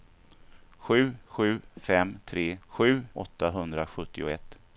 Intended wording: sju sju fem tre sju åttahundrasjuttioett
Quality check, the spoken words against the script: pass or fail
pass